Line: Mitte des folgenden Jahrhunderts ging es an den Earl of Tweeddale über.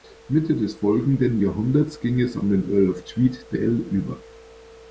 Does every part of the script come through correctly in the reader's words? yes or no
yes